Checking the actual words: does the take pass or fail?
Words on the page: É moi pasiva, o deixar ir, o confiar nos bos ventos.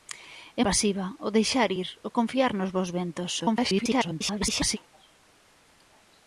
fail